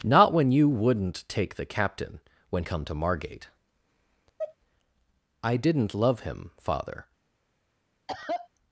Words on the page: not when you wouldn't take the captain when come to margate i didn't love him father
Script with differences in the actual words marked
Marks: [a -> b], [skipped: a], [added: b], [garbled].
not when you wouldn't take the captain when come to margate i didn't love him father